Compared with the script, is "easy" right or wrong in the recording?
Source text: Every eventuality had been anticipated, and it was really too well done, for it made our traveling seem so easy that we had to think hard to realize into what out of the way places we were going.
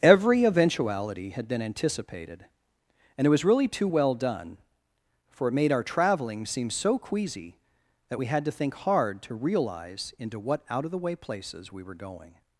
wrong